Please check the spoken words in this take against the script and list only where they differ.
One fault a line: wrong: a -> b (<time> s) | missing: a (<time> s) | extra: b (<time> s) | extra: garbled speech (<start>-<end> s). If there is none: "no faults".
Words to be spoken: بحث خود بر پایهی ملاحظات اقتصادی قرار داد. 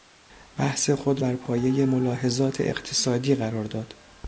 no faults